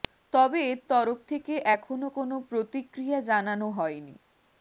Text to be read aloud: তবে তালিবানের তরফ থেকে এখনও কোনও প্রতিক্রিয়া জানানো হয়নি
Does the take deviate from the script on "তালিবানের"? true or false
true